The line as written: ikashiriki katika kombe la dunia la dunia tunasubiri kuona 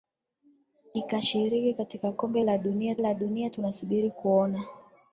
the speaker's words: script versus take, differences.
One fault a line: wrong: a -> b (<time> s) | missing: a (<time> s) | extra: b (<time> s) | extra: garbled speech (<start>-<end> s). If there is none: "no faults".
no faults